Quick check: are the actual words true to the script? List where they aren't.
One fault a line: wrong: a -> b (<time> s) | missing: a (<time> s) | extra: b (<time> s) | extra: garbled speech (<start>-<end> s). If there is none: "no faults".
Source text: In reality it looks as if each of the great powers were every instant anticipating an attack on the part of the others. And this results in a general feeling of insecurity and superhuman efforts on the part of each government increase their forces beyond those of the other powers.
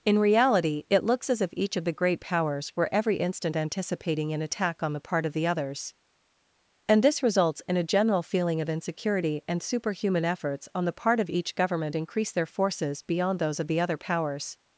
no faults